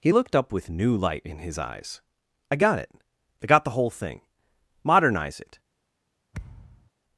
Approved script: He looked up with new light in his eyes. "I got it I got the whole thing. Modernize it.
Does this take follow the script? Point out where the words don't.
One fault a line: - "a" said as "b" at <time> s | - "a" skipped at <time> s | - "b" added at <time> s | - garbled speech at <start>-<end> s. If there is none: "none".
none